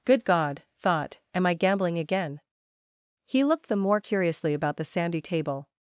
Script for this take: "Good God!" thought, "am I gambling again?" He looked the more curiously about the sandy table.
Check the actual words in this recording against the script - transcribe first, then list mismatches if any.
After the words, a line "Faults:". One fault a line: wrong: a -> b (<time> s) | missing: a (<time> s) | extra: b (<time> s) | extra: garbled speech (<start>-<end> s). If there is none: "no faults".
"Good God!" thought, "am I gambling again?" He looked the more curiously about the sandy table.
Faults:
no faults